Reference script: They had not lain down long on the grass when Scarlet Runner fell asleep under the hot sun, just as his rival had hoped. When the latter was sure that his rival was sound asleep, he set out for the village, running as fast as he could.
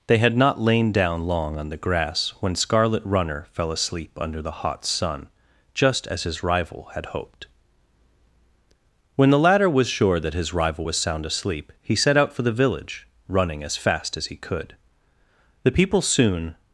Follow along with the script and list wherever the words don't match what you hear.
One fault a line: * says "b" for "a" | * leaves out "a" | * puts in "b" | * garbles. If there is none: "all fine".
* puts in "The people soon"